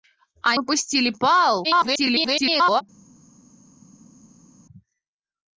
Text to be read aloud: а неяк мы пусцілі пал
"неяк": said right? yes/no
no